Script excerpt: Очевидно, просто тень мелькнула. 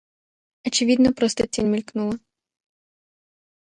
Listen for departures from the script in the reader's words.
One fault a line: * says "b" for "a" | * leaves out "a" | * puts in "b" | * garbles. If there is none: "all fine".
all fine